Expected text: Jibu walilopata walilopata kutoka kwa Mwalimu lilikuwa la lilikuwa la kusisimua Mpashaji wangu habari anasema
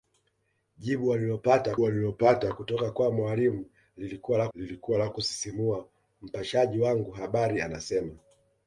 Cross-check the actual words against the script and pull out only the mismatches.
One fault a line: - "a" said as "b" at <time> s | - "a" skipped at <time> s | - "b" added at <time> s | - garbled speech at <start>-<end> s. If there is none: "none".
none